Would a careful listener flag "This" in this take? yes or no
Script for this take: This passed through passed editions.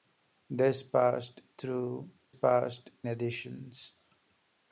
no